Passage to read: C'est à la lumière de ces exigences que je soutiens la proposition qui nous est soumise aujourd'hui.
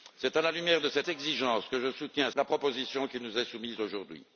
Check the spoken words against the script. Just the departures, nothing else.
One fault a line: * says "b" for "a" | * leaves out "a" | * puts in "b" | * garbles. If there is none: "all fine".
all fine